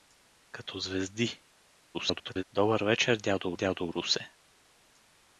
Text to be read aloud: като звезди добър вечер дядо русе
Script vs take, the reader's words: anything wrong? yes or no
yes